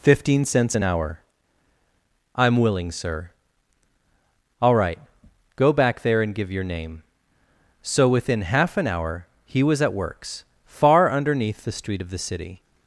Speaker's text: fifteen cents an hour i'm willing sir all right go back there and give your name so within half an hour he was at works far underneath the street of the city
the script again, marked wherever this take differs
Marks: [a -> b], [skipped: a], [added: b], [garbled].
fifteen cents an hour i'm willing sir all right go back there and give your name so within half an hour he was at works far underneath the street of the city